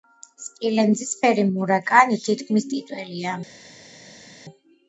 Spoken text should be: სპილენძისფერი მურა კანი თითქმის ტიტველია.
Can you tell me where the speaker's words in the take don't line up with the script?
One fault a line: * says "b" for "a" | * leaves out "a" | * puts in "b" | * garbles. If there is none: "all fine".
all fine